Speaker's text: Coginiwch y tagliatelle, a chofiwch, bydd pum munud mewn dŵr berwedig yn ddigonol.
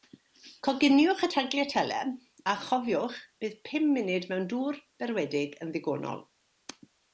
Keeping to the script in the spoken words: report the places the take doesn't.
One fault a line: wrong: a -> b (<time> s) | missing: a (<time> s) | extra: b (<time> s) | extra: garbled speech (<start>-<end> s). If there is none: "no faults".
no faults